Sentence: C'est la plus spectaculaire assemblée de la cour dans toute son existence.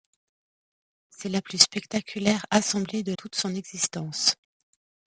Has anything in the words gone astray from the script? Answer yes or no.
yes